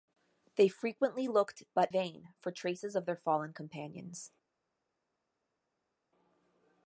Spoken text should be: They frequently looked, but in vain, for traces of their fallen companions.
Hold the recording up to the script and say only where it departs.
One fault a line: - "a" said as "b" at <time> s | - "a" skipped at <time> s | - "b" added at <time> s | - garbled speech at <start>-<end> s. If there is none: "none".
- "in" skipped at 1.9 s